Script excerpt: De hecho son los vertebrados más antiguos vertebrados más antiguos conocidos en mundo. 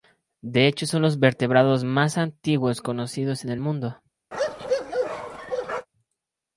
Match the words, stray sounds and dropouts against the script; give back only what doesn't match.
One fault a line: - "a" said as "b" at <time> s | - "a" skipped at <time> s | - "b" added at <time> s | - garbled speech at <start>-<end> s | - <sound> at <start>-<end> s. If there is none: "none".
- "vertebrados más antiguos" skipped at 2.8 s
- "el" added at 3.5 s
- bark at 4.3-5.9 s